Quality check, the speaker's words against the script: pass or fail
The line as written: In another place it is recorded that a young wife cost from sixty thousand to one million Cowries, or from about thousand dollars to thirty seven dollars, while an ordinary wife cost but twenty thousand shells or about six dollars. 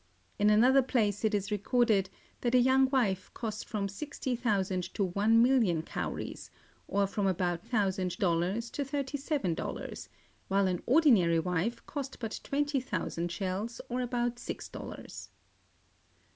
pass